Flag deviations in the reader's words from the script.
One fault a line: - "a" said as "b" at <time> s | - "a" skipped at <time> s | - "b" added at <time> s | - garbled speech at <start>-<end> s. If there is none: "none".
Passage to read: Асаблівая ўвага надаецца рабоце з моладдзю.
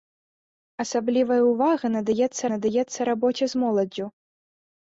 - "надаецца" added at 2.5 s